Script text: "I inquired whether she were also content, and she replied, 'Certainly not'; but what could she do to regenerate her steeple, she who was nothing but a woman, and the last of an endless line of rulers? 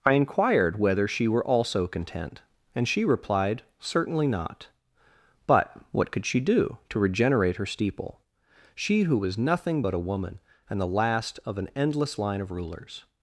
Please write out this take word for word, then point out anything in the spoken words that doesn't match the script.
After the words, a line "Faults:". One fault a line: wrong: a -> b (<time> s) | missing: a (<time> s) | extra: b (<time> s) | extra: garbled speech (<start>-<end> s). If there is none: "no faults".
"I inquired whether she were also content, and she replied, 'Certainly not'; but what could she do to regenerate her steeple, she who was nothing but a woman, and the last of an endless line of rulers?
Faults:
no faults